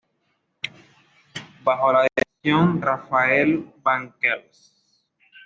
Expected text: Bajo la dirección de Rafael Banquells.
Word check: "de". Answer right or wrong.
wrong